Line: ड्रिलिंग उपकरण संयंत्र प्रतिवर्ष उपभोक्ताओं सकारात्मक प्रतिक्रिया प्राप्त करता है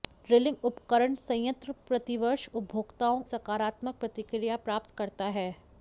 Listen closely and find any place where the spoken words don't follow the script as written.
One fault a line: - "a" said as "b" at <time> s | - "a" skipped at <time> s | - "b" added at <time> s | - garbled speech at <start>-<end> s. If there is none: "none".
none